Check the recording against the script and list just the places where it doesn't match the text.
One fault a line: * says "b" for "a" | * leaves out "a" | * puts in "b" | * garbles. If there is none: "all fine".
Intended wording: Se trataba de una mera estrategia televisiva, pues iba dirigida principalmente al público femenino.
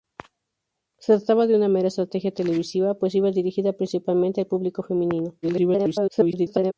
* garbles